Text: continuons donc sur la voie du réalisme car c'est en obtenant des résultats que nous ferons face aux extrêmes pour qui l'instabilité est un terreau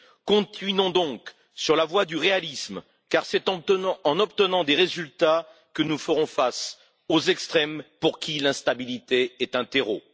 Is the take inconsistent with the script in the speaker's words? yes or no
no